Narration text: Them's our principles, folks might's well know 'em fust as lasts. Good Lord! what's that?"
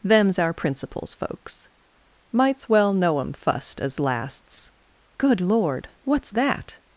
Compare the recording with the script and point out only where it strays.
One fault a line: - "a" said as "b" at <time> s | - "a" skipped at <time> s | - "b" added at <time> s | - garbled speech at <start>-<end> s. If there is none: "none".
none